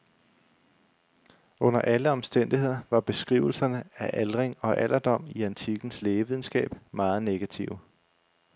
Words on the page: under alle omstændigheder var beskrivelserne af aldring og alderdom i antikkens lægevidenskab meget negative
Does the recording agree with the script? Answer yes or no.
yes